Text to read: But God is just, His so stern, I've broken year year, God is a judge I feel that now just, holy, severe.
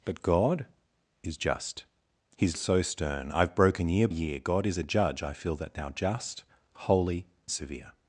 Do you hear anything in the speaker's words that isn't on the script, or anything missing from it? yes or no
no